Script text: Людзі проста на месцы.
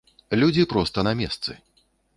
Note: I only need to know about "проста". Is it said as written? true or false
true